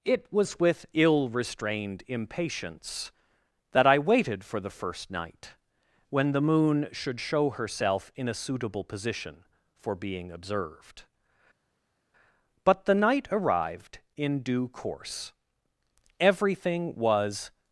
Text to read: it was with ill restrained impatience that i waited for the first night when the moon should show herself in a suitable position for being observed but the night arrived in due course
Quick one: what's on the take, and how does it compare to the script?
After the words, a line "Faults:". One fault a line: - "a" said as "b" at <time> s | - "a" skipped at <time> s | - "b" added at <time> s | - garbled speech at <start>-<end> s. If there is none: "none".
it was with ill restrained impatience that i waited for the first night when the moon should show herself in a suitable position for being observed but the night arrived in due course everything was
Faults:
- "everything was" added at 16.2 s